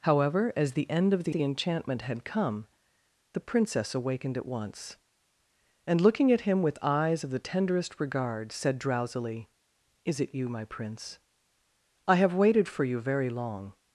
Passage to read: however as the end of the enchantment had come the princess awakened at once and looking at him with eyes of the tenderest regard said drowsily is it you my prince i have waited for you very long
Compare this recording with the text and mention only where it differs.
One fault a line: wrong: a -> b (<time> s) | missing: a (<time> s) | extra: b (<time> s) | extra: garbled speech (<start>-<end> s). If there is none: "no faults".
extra: the (1.3 s)